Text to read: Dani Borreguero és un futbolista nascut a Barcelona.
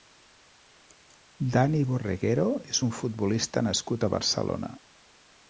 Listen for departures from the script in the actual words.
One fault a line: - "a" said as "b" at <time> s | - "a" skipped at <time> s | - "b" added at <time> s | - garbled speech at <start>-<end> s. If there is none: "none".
none